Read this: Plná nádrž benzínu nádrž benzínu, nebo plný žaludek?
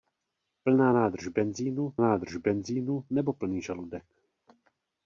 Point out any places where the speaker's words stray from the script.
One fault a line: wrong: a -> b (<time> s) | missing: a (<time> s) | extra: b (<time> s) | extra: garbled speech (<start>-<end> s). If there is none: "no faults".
no faults